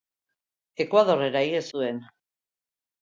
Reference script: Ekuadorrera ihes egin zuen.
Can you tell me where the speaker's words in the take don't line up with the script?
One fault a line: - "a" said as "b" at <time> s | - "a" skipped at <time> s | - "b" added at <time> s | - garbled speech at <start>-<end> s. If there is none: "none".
- "egin" skipped at 1.7 s